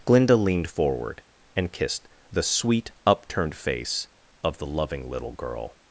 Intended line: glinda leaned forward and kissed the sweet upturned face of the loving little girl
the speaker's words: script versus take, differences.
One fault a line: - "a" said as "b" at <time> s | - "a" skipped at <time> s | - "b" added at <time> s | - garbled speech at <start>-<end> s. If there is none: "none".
none